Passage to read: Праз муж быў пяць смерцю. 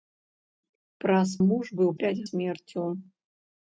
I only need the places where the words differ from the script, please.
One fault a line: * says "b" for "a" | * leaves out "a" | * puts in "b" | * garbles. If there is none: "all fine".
all fine